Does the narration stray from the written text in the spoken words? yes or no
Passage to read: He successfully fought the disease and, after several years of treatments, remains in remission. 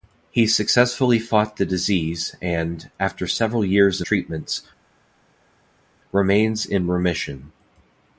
yes